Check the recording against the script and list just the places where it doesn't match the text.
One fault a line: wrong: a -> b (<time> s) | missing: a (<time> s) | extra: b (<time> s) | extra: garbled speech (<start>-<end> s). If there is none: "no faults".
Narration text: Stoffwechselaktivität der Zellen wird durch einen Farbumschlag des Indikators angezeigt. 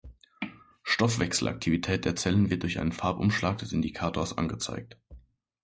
no faults